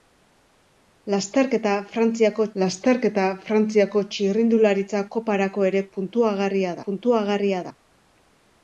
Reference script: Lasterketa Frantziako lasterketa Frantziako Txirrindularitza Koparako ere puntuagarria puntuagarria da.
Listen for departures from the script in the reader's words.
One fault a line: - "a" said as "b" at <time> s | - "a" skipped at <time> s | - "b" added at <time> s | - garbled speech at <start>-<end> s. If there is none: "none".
none